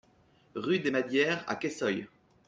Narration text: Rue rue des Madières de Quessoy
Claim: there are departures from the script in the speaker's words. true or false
true